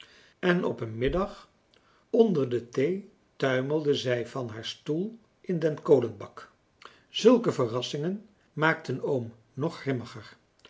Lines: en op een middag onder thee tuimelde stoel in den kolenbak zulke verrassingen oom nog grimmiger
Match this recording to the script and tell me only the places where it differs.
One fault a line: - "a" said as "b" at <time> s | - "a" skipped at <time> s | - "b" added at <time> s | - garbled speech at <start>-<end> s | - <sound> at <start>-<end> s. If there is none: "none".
- "de" added at 2.5 s
- "zij van haar" added at 3.9 s
- "maakten" added at 8.5 s